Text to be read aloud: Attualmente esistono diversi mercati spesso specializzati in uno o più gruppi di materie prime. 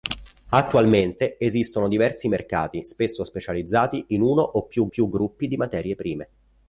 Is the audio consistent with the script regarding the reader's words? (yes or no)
no